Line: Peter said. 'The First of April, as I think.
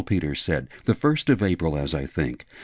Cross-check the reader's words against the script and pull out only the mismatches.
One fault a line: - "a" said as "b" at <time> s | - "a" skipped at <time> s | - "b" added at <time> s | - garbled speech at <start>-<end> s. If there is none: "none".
none